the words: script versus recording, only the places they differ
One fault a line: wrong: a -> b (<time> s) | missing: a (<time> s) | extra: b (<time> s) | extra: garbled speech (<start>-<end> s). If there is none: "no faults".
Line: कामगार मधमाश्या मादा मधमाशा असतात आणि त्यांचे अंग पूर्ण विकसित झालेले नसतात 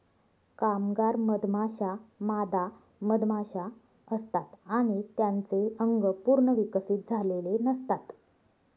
no faults